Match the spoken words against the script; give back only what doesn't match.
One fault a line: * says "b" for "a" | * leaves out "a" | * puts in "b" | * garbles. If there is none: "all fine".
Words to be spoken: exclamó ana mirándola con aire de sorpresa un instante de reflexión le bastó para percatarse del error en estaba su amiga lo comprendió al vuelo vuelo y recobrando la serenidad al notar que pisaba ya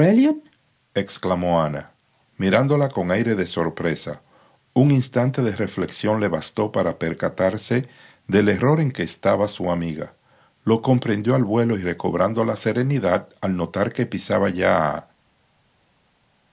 * puts in "que"
* leaves out "vuelo"